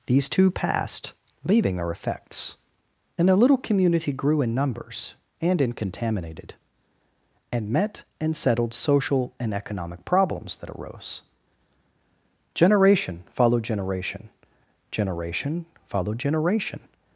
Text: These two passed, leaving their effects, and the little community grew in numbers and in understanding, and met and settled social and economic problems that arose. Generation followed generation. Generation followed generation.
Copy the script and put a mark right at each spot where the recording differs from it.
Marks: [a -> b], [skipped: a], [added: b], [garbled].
These two passed, leaving their effects, and the little community grew in numbers and in [understanding, -> contaminated] and met and settled social and economic problems that arose. Generation followed generation. Generation followed generation.